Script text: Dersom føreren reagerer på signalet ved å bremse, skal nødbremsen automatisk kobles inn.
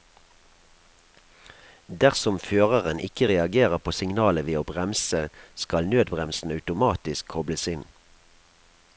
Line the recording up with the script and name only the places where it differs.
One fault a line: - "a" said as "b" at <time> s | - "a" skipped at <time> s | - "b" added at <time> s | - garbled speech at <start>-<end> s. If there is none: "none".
- "ikke" added at 3.1 s